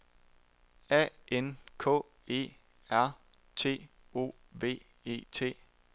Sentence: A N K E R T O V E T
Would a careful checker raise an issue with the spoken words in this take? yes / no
no